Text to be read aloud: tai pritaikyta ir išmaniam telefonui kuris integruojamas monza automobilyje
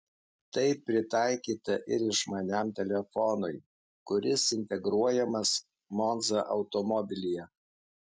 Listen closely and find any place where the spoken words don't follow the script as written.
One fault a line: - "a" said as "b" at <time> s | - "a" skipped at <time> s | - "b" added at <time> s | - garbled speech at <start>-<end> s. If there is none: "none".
none